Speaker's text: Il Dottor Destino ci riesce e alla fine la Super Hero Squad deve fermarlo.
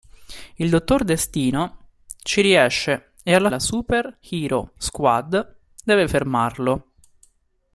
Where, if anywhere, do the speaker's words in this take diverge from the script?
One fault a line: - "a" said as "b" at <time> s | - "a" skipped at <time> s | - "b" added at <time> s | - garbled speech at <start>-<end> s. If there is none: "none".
- "fine" skipped at 3.5 s